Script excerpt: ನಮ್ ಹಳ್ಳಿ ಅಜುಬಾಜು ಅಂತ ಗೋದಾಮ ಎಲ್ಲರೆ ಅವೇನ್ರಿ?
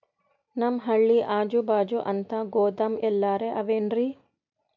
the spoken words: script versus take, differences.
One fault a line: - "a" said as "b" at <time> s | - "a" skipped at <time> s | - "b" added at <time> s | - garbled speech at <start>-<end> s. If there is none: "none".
none